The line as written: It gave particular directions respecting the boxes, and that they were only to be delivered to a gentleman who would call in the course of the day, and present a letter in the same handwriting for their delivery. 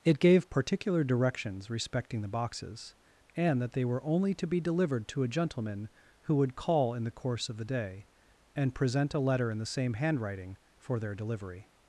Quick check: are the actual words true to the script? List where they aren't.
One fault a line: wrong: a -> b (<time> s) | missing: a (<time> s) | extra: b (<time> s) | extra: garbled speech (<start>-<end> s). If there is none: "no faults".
no faults